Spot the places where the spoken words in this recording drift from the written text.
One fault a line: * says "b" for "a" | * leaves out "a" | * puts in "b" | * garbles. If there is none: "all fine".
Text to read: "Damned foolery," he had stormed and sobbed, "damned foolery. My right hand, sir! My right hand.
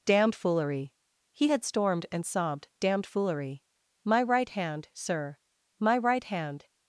all fine